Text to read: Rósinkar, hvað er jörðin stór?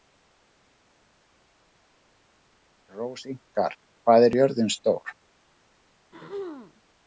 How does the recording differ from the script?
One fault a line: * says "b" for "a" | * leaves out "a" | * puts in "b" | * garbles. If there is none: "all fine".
all fine